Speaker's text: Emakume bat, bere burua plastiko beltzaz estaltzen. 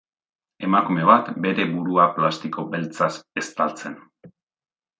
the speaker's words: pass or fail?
pass